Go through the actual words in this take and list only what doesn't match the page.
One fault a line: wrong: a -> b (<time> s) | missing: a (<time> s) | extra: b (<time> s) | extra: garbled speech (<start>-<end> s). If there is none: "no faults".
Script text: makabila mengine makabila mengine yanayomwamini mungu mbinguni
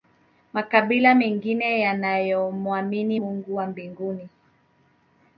missing: makabila mengine (1.8 s)
extra: wa (3.5 s)